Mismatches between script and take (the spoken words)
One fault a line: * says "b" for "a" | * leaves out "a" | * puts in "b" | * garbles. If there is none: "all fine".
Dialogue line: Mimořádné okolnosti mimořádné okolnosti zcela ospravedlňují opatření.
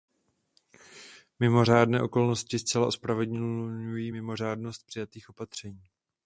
* says "zcela ospravedlňují mimořádnost přijatých" for "mimořádné okolnosti zcela ospravedlňují"